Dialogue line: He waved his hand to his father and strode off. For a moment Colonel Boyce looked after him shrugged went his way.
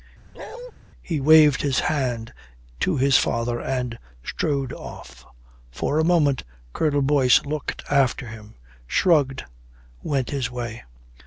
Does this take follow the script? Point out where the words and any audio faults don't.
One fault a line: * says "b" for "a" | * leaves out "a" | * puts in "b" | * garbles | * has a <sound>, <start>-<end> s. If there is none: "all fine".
* has a bark, 0.3-0.7 s